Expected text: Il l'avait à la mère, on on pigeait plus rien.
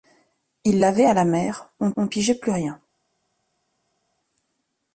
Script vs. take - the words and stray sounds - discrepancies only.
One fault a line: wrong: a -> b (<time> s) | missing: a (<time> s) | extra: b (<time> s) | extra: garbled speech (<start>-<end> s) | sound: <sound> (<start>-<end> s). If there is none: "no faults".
no faults